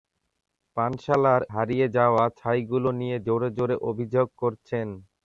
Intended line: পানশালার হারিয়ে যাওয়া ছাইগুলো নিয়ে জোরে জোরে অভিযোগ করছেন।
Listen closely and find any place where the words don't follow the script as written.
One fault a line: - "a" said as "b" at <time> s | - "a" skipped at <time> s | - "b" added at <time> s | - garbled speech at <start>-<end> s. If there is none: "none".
none